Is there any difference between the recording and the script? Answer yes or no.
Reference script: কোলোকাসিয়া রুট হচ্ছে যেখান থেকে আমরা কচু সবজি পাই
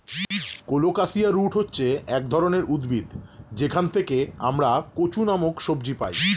yes